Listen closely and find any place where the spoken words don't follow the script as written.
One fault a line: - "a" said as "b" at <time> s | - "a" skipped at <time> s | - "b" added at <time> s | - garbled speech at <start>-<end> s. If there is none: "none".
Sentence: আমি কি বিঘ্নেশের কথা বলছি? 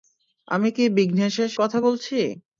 none